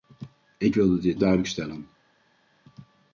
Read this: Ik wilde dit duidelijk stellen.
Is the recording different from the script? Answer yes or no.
no